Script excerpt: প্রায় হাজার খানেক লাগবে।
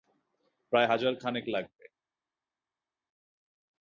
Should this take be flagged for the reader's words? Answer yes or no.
no